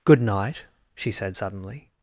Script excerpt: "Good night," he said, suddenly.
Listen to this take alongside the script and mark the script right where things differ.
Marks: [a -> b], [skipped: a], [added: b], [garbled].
"Good night," [he -> she] said, suddenly.